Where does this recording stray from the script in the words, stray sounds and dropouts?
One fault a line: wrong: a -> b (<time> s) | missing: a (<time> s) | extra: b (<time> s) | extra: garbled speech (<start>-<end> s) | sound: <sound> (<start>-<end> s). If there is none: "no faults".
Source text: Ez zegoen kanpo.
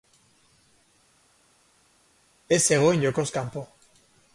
extra: jokoz (3.0 s)